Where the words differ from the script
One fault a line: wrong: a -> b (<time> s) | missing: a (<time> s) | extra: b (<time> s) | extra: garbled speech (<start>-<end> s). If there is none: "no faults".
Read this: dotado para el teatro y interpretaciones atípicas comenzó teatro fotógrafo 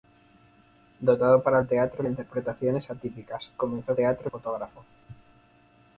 no faults